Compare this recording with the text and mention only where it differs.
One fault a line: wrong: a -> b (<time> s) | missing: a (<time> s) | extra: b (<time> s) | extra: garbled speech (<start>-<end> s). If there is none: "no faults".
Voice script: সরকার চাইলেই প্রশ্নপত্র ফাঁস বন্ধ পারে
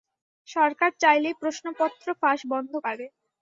no faults